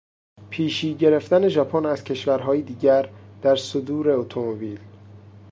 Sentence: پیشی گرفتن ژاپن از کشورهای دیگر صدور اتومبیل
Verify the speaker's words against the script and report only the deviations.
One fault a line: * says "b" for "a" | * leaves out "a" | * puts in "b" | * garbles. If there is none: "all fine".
* puts in "در"